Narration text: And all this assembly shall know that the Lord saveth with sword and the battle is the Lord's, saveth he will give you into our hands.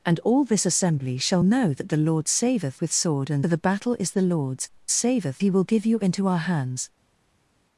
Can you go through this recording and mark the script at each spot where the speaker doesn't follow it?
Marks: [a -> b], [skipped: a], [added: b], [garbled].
And all this assembly shall know that the Lord saveth with sword and the battle is the Lord's, saveth he will give you into our hands.